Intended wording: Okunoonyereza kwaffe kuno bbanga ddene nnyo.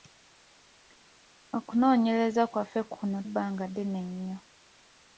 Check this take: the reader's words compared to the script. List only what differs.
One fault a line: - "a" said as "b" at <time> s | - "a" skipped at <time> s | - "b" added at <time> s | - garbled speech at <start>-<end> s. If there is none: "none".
none